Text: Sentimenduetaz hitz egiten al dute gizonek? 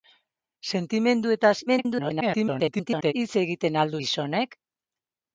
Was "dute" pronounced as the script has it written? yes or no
no